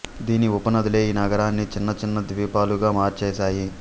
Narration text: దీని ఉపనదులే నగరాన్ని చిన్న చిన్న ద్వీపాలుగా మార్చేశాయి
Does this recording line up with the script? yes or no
no